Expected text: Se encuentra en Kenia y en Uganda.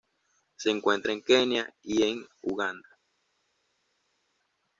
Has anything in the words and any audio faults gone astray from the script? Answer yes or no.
no